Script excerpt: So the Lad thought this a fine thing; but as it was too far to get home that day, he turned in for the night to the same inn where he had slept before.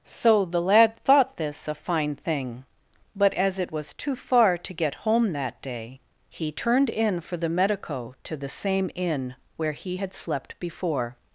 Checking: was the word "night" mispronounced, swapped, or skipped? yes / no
yes